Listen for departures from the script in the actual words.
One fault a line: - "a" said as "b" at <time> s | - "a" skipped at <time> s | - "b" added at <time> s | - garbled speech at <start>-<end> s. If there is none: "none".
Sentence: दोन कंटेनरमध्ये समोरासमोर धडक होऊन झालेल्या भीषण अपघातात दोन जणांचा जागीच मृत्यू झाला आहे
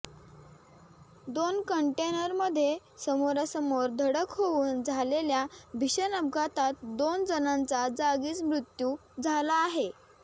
none